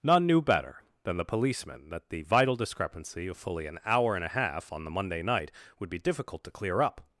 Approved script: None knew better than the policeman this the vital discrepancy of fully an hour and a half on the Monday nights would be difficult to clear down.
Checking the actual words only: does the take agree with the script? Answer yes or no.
no